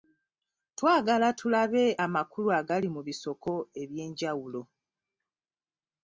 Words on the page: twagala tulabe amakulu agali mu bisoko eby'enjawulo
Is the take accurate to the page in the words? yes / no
yes